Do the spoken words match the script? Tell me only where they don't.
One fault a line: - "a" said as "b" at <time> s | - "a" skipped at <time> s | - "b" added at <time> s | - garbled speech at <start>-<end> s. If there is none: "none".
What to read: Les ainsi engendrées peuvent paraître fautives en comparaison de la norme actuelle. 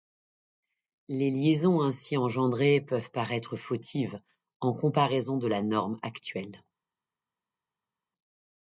- "liaisons" added at 1.3 s